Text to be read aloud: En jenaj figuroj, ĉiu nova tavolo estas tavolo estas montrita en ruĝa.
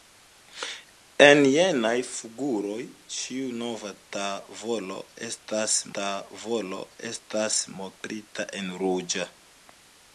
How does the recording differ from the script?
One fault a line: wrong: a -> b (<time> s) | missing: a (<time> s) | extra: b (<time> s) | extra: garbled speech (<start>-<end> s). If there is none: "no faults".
no faults